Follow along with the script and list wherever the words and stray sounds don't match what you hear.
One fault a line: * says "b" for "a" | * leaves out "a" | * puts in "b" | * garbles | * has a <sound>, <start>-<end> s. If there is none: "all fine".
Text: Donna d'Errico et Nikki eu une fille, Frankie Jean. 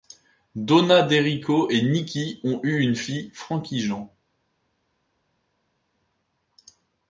* puts in "ont"